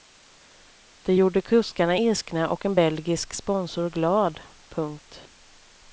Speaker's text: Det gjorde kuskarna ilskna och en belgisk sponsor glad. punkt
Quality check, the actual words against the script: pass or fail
pass